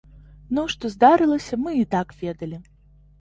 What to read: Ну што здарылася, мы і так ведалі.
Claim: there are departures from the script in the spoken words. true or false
false